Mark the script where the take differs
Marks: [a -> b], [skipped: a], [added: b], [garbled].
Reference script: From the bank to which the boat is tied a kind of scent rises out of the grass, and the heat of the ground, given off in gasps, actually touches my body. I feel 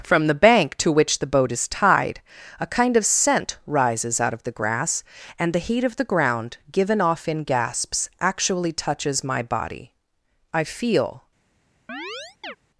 From the bank to which the boat is tied a kind of scent rises out of the grass, and the heat of the ground, given off in gasps, actually touches my body. I feel